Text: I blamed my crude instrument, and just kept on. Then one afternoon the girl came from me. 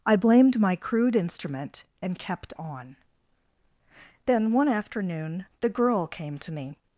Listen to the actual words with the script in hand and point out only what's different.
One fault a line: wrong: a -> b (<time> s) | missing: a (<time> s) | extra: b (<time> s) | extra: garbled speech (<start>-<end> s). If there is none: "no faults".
missing: just (2.2 s)
wrong: from -> to (6.4 s)